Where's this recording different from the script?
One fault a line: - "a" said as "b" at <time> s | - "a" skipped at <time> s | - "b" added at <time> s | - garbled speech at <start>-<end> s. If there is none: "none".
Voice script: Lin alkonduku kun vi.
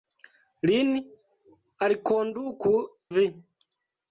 - "kun" skipped at 2.7 s